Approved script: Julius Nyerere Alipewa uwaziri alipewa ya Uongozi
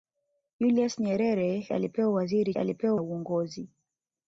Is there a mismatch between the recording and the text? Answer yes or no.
no